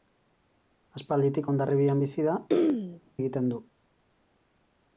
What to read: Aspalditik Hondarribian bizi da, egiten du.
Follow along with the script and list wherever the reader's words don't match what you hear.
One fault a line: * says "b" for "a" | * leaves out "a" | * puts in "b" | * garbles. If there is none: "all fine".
all fine